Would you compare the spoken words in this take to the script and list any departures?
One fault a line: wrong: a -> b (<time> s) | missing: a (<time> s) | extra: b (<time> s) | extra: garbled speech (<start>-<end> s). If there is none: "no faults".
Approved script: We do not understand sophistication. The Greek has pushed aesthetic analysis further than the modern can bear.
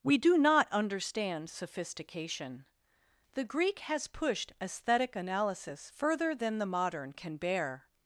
no faults